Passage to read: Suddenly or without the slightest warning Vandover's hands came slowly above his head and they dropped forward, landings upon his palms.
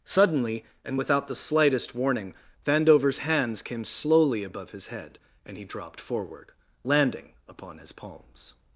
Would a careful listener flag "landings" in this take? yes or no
yes